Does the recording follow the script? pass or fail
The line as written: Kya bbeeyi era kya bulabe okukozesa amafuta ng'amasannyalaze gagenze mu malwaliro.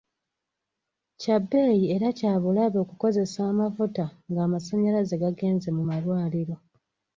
pass